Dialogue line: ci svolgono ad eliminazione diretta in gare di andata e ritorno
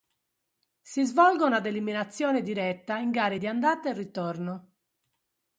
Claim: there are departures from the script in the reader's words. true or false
true